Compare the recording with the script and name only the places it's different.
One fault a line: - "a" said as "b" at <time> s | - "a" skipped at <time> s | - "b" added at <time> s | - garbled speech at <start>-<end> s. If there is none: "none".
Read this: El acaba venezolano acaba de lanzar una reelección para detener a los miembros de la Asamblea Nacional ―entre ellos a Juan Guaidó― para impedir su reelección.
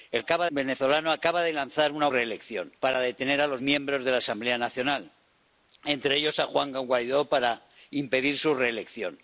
none